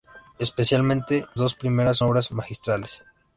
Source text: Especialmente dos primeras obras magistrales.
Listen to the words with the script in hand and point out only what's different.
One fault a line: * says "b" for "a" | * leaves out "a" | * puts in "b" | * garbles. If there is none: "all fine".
all fine